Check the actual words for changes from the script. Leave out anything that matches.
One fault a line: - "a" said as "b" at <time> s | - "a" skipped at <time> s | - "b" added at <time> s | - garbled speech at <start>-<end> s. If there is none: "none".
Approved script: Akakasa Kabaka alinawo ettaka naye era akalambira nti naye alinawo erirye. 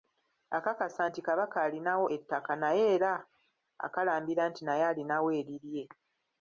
- "nti" added at 1.1 s